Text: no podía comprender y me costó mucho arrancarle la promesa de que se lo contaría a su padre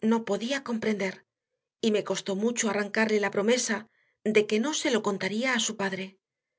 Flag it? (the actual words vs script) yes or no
yes